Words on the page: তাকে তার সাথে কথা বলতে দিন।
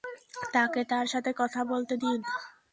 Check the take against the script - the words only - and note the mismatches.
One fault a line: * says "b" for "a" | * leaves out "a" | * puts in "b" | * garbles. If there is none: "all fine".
all fine